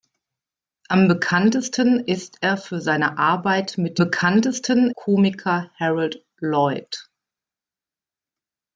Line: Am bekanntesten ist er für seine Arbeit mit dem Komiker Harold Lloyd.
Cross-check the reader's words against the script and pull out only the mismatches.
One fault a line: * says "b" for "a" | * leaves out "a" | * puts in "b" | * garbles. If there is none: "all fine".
* says "bekanntesten" for "dem"